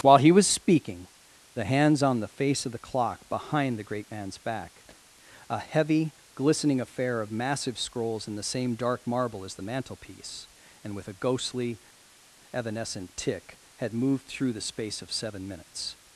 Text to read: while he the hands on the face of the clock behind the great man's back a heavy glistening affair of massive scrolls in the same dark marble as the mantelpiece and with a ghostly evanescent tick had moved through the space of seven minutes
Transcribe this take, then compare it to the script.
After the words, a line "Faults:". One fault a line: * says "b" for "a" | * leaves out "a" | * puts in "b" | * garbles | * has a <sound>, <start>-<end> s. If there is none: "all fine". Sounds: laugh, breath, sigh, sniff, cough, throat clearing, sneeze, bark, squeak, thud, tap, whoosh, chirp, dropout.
while he was speaking the hands on the face of the clock behind the great man's back a heavy glistening affair of massive scrolls in the same dark marble as the mantelpiece and with a ghostly evanescent tick had moved through the space of seven minutes
Faults:
* puts in "was speaking"